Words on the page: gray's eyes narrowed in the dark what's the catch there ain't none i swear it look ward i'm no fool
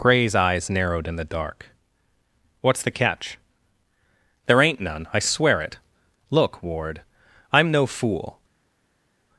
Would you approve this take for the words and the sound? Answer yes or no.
yes